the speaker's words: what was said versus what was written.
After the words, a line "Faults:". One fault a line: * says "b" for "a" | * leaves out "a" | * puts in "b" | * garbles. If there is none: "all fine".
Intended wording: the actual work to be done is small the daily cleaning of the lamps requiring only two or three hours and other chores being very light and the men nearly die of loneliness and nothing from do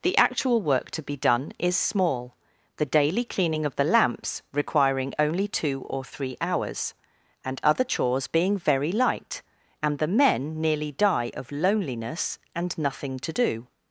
the actual work to be done is small the daily cleaning of the lamps requiring only two or three hours and other chores being very light and the men nearly die of loneliness and nothing to do
Faults:
* says "to" for "from"